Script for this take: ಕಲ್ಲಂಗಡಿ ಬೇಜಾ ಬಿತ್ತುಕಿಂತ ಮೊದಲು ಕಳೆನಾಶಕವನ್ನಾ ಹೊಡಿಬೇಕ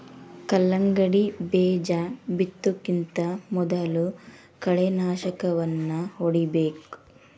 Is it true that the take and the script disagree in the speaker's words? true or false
false